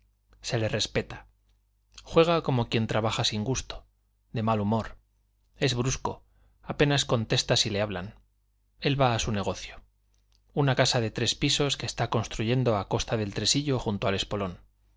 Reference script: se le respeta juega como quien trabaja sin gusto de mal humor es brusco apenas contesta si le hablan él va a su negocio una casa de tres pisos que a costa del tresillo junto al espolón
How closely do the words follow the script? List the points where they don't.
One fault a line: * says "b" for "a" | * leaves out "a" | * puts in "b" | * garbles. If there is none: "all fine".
* puts in "está construyendo"